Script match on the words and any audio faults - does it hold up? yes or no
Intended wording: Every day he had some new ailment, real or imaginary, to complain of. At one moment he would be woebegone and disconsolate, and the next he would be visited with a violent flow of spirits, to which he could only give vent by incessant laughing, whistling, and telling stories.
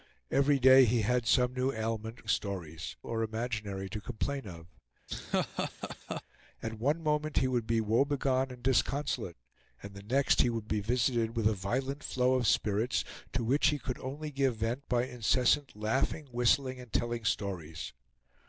no